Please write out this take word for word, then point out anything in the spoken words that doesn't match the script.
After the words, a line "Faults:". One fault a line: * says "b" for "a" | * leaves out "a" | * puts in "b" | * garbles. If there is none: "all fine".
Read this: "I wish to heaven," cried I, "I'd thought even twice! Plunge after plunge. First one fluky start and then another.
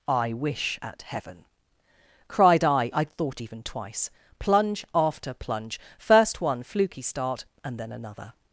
"I wish at heaven," cried I, "I'd thought even twice! Plunge after plunge. First one fluky start and then another.
Faults:
* says "at" for "to"